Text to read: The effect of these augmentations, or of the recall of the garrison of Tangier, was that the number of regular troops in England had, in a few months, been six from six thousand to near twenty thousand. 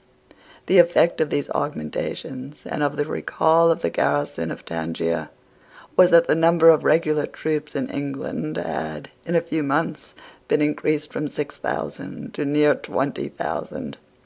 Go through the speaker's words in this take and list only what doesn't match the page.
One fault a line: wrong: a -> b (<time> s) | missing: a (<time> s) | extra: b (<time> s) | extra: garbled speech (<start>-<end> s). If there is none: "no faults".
wrong: or -> and (2.6 s)
wrong: six -> increased (10.6 s)